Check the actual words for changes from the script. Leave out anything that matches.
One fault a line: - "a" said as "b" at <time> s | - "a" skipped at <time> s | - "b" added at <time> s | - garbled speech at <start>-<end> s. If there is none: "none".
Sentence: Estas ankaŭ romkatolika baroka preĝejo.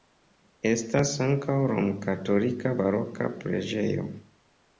none